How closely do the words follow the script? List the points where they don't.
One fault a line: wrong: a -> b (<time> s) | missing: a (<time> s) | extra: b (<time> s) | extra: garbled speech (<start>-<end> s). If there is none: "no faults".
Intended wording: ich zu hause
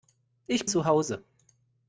no faults